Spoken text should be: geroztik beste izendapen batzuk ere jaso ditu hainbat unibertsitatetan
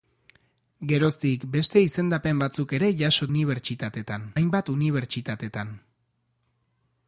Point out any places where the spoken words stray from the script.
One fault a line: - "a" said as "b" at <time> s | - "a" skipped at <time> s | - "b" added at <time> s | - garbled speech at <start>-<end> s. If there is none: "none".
- "ditu" said as "unibertsitatetan" at 3.3 s